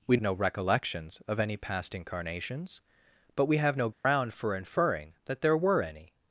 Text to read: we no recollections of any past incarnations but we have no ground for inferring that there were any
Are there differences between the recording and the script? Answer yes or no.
no